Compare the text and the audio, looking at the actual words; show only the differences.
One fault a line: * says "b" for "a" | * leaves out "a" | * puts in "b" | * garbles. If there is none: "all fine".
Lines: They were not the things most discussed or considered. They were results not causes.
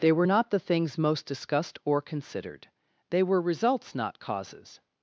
all fine